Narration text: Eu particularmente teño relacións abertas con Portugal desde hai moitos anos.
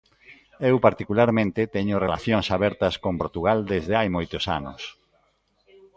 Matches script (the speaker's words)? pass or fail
pass